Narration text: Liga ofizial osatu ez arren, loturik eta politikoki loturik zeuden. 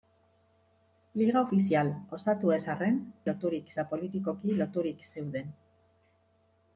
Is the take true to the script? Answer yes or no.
yes